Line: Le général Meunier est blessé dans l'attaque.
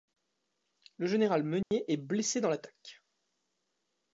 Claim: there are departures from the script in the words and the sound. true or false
true